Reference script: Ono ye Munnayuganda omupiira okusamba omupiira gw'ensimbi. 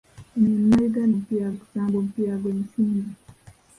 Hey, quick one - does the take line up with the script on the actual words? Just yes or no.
yes